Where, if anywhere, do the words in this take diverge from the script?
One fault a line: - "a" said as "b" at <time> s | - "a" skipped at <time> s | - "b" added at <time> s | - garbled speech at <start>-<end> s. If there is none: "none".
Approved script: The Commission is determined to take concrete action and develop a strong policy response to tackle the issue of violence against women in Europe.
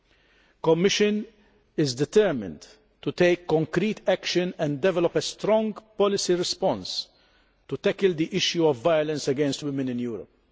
none